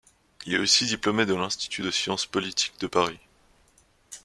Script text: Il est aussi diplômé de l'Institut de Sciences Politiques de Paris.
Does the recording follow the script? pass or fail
pass